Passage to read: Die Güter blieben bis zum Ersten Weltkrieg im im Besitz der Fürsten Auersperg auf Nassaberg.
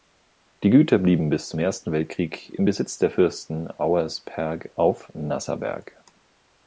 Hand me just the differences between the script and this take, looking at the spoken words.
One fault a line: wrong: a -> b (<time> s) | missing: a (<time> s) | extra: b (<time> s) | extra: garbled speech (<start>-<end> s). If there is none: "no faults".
missing: im (2.6 s)